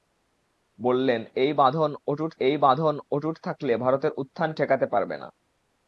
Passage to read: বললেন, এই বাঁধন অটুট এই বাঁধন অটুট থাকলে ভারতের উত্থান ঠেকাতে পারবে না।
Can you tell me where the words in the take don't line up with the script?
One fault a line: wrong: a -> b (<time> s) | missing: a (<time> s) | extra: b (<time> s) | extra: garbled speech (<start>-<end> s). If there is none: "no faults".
no faults